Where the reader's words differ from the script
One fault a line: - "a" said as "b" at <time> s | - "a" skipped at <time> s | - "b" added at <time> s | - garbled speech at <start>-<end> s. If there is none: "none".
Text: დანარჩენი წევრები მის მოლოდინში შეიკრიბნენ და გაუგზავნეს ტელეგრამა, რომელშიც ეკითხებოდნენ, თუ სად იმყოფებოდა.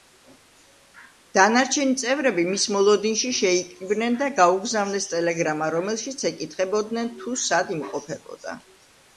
none